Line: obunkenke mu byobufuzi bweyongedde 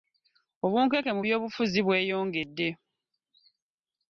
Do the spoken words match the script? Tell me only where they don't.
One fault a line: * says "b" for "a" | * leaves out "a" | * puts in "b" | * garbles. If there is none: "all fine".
all fine